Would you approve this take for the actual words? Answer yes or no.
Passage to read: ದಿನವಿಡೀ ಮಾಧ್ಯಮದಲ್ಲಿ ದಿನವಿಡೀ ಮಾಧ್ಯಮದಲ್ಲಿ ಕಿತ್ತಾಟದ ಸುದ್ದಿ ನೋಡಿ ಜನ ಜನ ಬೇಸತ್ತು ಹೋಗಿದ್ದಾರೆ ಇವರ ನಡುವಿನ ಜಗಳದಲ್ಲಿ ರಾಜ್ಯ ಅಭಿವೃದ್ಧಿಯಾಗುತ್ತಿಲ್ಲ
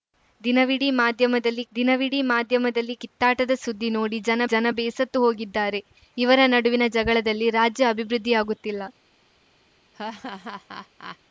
yes